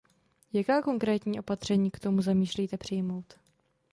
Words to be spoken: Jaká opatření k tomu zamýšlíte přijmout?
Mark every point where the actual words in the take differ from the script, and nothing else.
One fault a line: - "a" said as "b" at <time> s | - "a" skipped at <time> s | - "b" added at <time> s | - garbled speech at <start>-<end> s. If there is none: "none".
- "konkrétní" added at 0.8 s